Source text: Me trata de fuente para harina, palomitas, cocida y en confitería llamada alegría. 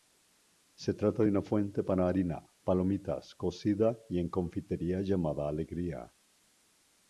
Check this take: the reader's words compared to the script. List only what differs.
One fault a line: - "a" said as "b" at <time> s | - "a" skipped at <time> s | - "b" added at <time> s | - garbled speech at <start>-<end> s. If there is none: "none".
- "Me" said as "Se" at 0.7 s
- "una" added at 1.3 s